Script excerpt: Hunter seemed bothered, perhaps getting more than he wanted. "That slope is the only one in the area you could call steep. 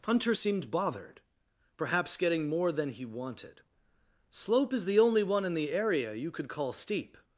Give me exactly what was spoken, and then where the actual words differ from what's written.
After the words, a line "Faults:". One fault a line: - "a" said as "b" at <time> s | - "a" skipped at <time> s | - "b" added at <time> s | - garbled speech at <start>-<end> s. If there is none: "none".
Hunter seemed bothered, perhaps getting more than he wanted. "slope is the only one in the area you could call steep.
Faults:
- "That" skipped at 3.6 s